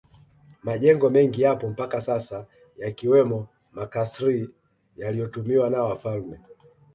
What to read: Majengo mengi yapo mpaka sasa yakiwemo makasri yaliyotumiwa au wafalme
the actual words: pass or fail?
fail